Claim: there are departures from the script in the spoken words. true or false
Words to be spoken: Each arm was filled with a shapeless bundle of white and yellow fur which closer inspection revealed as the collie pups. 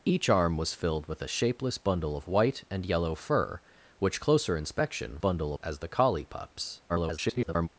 true